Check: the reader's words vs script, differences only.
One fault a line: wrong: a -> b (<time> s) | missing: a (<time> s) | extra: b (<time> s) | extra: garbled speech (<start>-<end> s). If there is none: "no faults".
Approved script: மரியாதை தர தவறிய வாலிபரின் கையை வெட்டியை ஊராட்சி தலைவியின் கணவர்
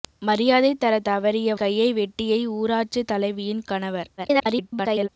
missing: வாலிபரின் (1.6 s)
extra: garbled speech (4.2-5.1 s)